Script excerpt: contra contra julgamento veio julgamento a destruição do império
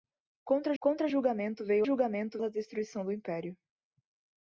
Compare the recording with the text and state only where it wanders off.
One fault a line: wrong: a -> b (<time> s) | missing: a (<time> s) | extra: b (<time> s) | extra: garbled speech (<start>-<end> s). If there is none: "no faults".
no faults